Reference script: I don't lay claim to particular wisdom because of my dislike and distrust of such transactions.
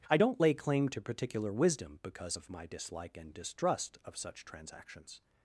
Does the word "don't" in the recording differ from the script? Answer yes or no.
no